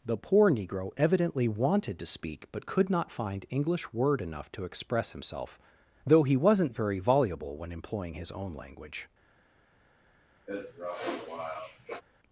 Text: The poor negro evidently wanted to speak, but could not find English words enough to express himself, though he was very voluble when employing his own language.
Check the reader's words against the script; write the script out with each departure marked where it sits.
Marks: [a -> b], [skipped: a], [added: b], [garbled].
The poor negro evidently wanted to speak, but could not find English [words -> word] enough to express himself, though he [was -> wasn't] very voluble when employing his own language.